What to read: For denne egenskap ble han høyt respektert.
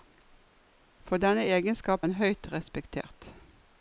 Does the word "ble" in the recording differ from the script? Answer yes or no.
yes